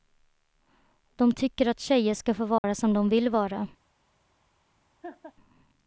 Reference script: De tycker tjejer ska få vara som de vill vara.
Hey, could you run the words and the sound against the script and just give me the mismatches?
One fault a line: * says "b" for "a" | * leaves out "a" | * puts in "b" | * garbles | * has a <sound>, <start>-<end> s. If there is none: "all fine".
* puts in "att"
* has a dropout, 2.6-2.6 s
* has a laugh, 5.0-5.3 s